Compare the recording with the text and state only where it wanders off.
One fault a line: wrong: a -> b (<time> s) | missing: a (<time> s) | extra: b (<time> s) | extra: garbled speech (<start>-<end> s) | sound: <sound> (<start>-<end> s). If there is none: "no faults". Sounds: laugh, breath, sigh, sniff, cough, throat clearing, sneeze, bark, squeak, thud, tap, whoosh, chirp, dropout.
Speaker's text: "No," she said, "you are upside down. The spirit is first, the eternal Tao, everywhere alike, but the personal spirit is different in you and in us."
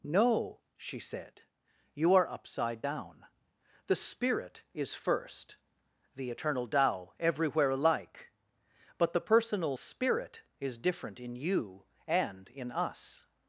no faults